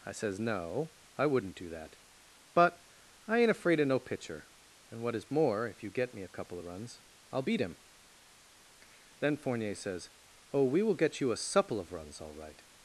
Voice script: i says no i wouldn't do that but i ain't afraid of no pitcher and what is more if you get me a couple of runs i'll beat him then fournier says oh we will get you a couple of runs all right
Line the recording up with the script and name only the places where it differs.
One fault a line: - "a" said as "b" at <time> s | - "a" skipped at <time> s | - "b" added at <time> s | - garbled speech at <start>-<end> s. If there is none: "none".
- "couple" said as "supple" at 11.4 s